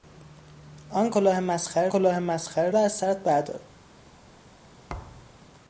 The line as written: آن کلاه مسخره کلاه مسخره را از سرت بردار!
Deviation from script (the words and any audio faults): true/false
true